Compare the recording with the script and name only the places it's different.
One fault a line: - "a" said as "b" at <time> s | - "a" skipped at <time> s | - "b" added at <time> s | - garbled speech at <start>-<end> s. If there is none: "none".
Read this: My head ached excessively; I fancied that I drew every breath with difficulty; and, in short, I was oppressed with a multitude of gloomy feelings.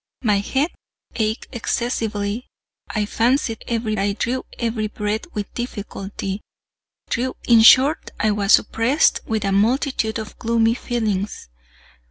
- "that" said as "every" at 3.7 s
- "and" said as "drew" at 7.0 s